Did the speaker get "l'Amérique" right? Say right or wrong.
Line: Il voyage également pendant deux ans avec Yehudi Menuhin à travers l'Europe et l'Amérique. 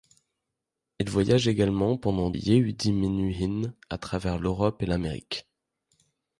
right